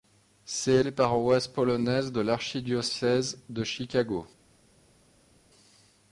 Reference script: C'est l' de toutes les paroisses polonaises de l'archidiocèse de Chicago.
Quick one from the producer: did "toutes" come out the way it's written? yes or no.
no